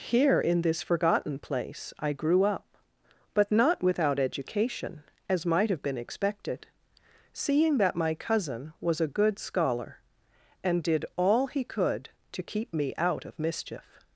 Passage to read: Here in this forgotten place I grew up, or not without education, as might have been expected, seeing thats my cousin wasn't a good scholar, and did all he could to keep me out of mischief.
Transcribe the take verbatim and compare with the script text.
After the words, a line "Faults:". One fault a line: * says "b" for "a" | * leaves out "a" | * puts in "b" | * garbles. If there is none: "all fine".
Here in this forgotten place I grew up, but not without education, as might have been expected, seeing that my cousin was a good scholar, and did all he could to keep me out of mischief.
Faults:
* says "but" for "or"
* says "that" for "thats"
* says "was" for "wasn't"